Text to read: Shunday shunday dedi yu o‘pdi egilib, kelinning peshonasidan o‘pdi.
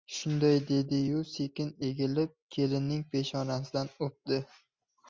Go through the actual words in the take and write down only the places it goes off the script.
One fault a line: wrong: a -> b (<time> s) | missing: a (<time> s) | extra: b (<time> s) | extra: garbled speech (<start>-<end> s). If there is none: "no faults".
missing: shunday (0.6 s)
wrong: o‘pdi -> sekin (1.3 s)